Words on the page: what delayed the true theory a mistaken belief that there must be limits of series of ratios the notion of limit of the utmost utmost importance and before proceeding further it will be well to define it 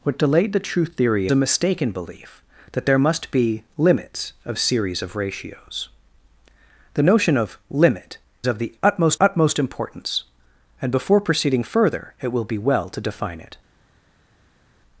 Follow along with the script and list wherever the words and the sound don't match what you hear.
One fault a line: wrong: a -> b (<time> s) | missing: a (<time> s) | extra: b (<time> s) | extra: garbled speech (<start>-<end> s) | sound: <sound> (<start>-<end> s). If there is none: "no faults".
no faults